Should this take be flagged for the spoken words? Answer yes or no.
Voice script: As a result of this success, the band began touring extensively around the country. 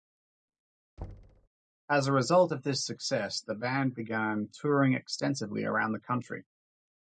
no